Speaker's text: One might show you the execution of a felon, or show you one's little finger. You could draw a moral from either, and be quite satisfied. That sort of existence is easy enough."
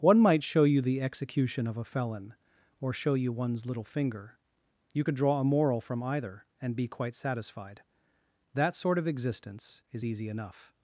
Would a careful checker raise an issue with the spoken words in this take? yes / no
no